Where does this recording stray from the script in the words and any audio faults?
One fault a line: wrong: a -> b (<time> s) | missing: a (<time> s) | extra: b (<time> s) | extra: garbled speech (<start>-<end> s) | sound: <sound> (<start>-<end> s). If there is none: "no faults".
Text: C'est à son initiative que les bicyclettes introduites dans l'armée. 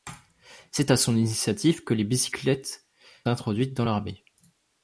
no faults